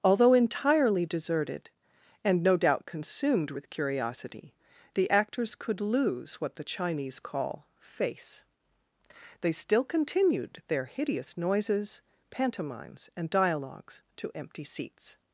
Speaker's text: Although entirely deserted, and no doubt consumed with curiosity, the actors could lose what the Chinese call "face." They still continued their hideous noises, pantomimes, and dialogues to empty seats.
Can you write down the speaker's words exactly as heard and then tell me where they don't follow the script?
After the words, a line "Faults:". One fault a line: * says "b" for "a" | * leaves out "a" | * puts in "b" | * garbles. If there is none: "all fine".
Although entirely deserted, and no doubt consumed with curiosity, the actors could lose what the Chinese call "face." They still continued their hideous noises, pantomimes, and dialogues to empty seats.
Faults:
all fine